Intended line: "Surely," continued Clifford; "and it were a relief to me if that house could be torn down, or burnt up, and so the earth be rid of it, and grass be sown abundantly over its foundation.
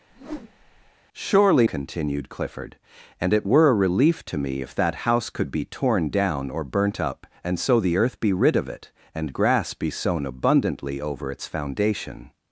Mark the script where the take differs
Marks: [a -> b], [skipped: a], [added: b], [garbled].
"Surely," continued Clifford; "and it were a relief to me if that house could be torn down, or burnt up, and so the earth be rid of it, and grass be sown abundantly over its foundation.